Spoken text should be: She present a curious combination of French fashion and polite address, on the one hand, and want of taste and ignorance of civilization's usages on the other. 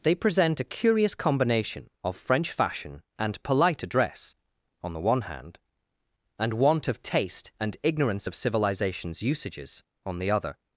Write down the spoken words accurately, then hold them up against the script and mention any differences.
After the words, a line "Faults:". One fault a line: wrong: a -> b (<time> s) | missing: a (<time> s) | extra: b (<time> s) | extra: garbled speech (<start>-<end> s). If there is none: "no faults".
They present a curious combination of French fashion and polite address, on the one hand, and want of taste and ignorance of civilization's usages on the other.
Faults:
wrong: She -> They (0.0 s)